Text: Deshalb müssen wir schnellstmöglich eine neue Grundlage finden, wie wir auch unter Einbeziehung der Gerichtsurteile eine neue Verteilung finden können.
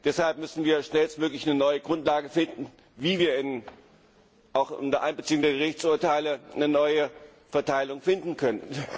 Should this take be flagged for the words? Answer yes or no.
no